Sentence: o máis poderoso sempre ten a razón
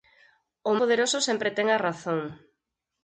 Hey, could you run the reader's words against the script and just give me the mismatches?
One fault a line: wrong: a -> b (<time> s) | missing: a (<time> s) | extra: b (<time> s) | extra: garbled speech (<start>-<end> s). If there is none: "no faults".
missing: máis (0.7 s)